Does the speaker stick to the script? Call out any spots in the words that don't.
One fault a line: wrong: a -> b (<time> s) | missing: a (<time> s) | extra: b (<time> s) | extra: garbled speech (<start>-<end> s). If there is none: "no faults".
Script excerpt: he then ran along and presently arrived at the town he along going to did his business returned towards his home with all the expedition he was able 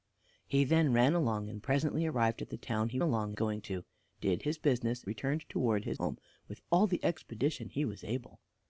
no faults